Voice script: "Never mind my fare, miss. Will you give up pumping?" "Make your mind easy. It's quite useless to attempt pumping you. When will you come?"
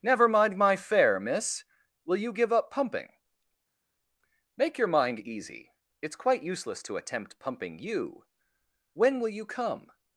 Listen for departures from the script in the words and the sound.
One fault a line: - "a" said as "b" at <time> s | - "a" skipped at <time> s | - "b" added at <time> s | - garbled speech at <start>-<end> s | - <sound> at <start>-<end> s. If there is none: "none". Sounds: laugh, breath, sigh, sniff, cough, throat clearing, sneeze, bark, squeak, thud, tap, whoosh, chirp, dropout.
none